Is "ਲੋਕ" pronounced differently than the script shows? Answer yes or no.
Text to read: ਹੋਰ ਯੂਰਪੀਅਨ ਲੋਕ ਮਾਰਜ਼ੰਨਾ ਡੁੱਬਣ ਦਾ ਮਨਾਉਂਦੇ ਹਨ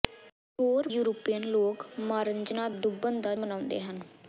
no